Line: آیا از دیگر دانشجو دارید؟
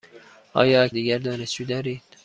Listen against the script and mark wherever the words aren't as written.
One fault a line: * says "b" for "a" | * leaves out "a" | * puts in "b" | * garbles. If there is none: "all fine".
all fine